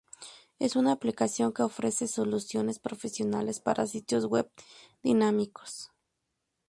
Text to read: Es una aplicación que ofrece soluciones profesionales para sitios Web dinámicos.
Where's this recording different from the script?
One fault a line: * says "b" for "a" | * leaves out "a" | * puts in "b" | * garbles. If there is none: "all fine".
all fine